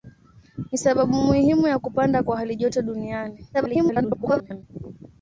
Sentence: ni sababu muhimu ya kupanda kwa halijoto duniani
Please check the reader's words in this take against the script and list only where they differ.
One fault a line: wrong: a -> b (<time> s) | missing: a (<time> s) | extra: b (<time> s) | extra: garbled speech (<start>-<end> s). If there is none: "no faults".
extra: garbled speech (3.5-4.6 s)